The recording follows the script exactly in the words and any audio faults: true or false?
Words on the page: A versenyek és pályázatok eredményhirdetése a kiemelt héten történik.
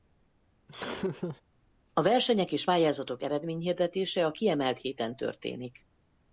false